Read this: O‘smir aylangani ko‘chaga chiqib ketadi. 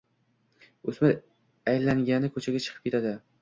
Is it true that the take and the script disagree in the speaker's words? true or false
false